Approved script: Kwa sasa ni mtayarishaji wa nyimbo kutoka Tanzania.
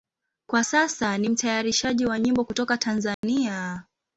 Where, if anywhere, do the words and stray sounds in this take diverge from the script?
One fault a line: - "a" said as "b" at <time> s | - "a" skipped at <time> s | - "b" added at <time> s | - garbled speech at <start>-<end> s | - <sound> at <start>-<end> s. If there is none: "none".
- dropout at 3.1-3.2 s